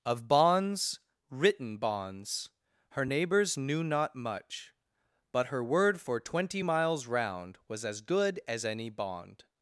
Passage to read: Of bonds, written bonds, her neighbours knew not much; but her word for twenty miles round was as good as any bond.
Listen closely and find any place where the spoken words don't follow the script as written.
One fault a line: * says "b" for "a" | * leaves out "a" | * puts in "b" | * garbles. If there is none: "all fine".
all fine